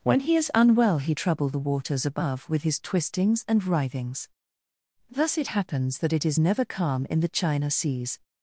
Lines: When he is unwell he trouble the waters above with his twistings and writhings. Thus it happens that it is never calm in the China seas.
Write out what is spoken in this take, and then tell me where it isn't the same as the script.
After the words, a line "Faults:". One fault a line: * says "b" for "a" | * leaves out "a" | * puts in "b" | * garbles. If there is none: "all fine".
When he is unwell he trouble the waters above with his twistings and writhings. Thus it happens that it is never calm in the China seas.
Faults:
all fine